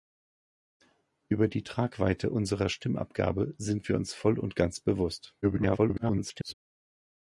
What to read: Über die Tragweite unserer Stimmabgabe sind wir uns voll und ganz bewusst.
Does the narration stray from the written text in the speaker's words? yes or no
yes